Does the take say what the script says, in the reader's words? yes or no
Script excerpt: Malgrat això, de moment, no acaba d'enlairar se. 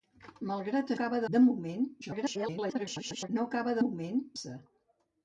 no